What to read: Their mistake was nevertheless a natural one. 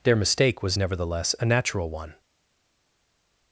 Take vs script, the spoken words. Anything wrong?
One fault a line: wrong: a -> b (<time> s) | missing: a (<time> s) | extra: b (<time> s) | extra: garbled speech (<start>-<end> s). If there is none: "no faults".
no faults